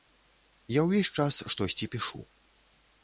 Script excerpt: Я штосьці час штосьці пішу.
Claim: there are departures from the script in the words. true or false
true